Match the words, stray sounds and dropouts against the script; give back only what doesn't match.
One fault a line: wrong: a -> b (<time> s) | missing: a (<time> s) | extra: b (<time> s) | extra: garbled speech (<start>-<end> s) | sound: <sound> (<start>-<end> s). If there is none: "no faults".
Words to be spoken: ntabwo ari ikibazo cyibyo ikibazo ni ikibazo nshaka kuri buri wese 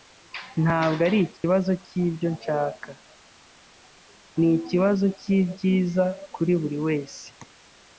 sound: dropout (1.4-1.4 s)
wrong: ikibazo -> nshaka (2.4 s)
wrong: nshaka -> cyibyiza (5.2 s)